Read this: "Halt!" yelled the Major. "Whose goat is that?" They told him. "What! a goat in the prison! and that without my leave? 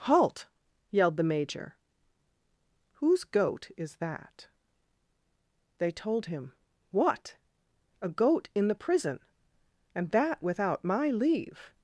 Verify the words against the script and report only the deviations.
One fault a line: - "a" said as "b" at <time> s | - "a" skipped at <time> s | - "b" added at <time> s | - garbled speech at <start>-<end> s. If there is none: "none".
none